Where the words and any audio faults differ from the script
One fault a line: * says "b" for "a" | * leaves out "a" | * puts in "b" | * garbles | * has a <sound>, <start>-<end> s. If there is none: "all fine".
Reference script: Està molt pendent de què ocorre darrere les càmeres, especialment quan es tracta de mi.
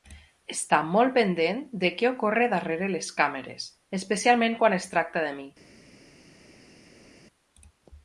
all fine